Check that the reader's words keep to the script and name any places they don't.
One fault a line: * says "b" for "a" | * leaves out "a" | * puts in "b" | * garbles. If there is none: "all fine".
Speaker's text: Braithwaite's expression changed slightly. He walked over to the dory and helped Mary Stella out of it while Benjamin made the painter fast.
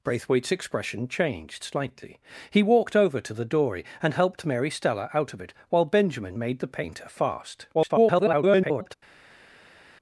* garbles